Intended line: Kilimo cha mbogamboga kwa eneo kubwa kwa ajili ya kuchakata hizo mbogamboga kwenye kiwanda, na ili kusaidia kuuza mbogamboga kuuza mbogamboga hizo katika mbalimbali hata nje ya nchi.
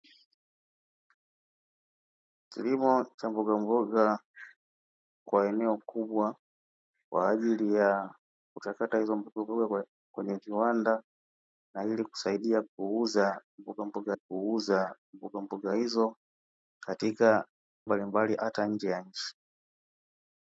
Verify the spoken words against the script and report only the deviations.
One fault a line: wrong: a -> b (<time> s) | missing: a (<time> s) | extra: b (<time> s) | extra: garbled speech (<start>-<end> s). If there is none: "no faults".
no faults